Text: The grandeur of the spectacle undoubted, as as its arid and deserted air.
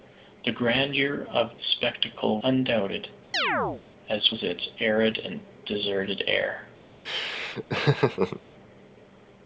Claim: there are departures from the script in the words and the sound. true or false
true